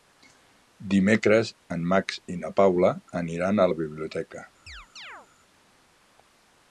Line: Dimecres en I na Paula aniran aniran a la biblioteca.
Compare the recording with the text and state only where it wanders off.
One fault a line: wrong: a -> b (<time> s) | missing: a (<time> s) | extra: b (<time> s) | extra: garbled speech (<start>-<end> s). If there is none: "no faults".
extra: Max (1.9 s)
missing: aniran (3.6 s)